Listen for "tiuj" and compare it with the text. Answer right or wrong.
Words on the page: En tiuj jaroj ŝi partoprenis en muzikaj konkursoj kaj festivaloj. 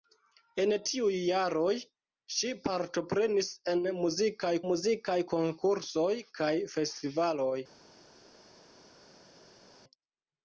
right